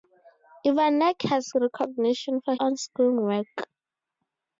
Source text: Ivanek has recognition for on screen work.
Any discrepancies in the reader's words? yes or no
no